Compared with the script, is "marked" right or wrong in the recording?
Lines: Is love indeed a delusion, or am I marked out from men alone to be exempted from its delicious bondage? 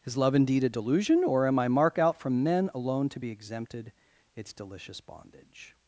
wrong